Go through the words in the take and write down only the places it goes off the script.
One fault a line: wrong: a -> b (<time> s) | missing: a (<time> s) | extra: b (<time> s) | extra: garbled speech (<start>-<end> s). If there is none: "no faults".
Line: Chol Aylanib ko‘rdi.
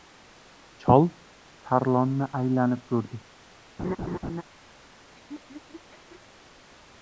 extra: Tarlonni (1.7 s)